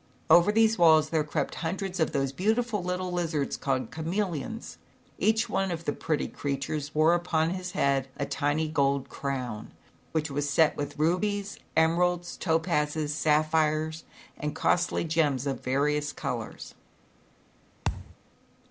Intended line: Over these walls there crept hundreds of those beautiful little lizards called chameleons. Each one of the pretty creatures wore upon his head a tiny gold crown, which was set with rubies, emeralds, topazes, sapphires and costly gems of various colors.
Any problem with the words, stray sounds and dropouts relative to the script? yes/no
yes